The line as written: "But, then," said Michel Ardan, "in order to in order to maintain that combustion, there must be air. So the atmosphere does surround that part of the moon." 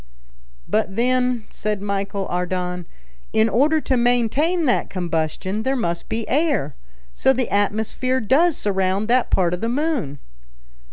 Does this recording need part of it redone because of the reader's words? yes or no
yes